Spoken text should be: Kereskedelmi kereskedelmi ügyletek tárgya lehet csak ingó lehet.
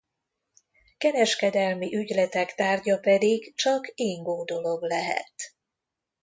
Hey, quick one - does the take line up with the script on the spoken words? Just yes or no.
no